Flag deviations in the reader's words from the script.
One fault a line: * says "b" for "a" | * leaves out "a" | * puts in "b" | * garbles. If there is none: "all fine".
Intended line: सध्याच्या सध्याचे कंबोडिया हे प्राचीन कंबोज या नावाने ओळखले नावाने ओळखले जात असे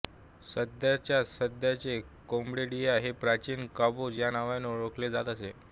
* leaves out "नावाने ओळखले"